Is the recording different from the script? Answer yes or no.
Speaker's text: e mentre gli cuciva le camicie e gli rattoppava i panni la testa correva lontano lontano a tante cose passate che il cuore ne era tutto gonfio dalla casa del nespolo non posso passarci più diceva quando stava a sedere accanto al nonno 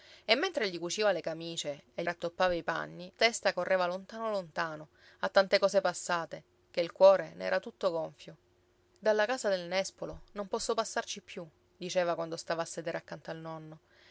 yes